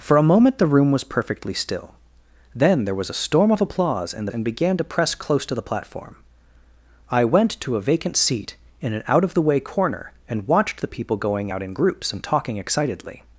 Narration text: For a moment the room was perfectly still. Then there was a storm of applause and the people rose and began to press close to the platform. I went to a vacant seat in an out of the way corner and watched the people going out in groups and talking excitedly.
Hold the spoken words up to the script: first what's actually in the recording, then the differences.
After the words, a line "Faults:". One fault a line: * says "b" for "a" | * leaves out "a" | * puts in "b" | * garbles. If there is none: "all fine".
For a moment the room was perfectly still. Then there was a storm of applause and and began to press close to the platform. I went to a vacant seat in an out of the way corner and watched the people going out in groups and talking excitedly.
Faults:
* leaves out "the people rose"